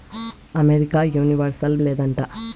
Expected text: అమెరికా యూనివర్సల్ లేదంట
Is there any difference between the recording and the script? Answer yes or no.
no